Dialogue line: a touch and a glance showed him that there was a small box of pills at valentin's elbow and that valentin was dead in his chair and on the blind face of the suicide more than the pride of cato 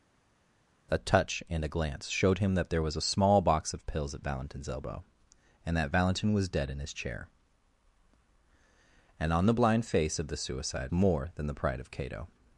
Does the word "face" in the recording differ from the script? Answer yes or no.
no